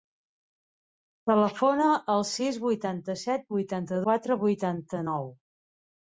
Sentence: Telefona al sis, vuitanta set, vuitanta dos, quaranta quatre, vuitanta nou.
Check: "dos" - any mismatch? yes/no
yes